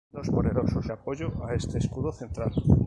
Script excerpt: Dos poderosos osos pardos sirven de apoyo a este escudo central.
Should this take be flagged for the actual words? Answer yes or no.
yes